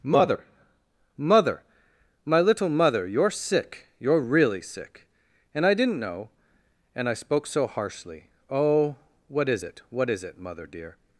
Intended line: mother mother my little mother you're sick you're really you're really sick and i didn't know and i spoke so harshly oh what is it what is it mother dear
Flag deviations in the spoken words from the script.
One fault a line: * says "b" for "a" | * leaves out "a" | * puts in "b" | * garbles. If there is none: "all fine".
* leaves out "you're really"